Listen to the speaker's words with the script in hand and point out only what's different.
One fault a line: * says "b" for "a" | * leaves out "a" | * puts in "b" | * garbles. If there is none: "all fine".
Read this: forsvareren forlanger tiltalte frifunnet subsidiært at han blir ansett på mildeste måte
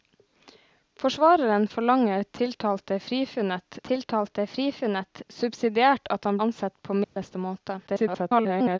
* puts in "tiltalte frifunnet"
* leaves out "blir"
* garbles